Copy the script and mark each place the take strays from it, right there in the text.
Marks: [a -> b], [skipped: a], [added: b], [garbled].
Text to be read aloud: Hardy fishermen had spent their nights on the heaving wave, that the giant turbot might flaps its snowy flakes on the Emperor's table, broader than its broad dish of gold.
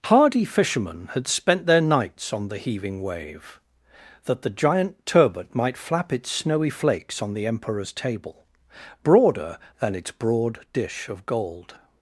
Hardy fishermen had spent their nights on the heaving wave, that the giant turbot might [flaps -> flap] its snowy flakes on the Emperor's table, broader than its broad dish of gold.